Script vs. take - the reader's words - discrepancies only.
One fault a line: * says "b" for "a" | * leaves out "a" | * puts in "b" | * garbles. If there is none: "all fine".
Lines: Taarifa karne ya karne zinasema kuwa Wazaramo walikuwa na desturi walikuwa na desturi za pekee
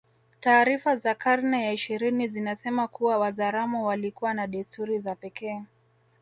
* puts in "za"
* says "ishirini" for "karne"
* leaves out "walikuwa na desturi"